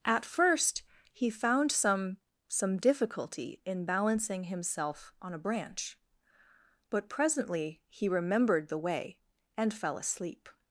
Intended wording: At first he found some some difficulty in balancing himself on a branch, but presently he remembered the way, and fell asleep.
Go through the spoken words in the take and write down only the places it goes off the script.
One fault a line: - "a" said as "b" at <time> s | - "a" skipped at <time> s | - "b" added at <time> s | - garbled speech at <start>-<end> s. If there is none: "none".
none